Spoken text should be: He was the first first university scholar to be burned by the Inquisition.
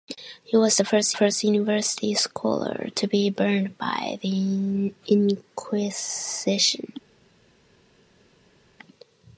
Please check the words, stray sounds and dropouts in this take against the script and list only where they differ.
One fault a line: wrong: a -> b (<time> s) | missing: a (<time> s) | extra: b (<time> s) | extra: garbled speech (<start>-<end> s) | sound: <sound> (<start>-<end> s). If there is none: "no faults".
no faults